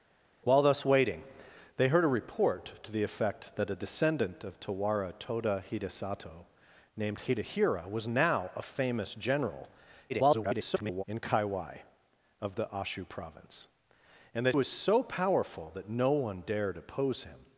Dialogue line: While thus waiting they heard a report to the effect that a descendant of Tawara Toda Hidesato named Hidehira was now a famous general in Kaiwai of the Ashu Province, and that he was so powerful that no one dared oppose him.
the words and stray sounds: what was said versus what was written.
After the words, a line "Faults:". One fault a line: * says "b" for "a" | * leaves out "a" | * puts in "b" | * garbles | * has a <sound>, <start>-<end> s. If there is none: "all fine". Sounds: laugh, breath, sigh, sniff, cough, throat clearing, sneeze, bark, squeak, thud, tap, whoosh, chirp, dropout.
While thus waiting they heard a report to the effect that a descendant of Tawara Toda Hidesato named Hidehira was now a famous general [garbled] in Kaiwai of the Ashu Province, and that was so powerful that no one dared oppose him.
Faults:
* garbles
* leaves out "he"